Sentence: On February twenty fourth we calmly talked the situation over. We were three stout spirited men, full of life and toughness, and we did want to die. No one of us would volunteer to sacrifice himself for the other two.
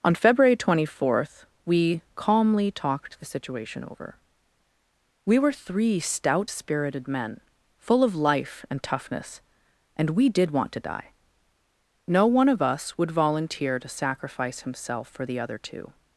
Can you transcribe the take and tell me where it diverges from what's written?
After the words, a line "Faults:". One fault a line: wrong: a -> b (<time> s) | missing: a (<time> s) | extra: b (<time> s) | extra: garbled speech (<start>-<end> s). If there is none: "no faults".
On February twenty fourth we calmly talked the situation over. We were three stout spirited men, full of life and toughness, and we did want to die. No one of us would volunteer to sacrifice himself for the other two.
Faults:
no faults